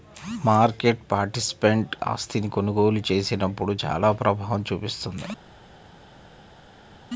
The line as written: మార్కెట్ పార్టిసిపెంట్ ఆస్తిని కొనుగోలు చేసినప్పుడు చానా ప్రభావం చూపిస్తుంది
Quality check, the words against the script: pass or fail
pass